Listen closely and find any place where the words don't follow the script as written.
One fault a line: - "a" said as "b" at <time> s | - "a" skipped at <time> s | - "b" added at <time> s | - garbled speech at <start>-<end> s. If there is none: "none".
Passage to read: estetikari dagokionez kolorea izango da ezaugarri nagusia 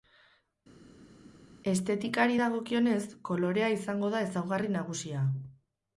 none